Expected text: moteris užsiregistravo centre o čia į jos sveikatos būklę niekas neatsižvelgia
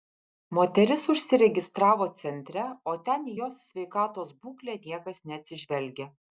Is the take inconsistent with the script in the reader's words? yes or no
yes